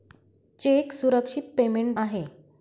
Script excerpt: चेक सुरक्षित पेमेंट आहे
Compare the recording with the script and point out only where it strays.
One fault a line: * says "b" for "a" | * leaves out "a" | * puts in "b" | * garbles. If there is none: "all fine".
all fine